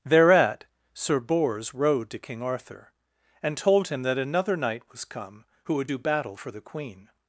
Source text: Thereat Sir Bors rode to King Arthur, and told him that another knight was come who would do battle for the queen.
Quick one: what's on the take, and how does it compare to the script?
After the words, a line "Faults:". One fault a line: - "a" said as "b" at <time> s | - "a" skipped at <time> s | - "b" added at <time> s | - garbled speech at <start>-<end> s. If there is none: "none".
Thereat Sir Bors rode to King Arthur, and told him that another knight was come who would do battle for the queen.
Faults:
none